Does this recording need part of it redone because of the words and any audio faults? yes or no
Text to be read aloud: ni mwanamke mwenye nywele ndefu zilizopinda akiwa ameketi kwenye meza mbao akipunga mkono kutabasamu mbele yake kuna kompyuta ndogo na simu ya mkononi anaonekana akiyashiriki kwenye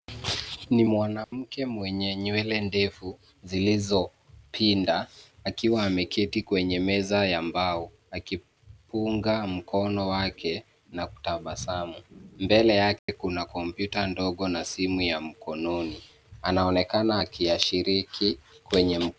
yes